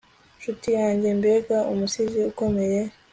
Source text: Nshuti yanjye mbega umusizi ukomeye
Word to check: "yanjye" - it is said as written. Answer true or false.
true